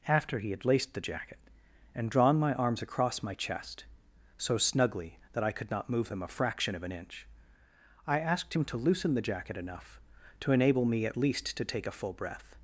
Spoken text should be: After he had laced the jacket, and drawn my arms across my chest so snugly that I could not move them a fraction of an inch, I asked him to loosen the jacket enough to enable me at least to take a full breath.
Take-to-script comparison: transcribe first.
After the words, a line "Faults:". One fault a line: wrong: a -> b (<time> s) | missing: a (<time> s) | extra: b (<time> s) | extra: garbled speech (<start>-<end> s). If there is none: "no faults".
After he had laced the jacket, and drawn my arms across my chest so snugly that I could not move them a fraction of an inch, I asked him to loosen the jacket enough to enable me at least to take a full breath.
Faults:
no faults